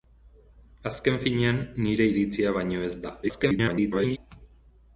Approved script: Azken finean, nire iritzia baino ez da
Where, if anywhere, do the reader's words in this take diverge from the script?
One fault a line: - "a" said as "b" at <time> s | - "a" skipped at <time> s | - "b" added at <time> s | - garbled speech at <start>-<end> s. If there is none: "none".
- garbled speech at 3.2-4.2 s